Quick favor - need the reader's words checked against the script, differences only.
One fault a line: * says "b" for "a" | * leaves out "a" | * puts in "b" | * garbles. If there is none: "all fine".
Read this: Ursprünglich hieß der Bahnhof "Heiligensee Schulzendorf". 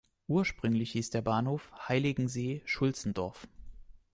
all fine